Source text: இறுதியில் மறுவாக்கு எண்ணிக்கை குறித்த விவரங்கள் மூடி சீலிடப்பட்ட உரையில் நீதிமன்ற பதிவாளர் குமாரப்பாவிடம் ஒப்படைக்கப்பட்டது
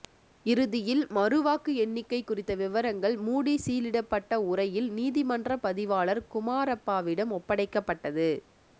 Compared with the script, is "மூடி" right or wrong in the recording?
right